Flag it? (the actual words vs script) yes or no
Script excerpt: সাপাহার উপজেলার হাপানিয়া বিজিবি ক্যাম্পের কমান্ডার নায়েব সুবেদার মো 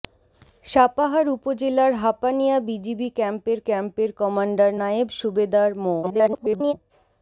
yes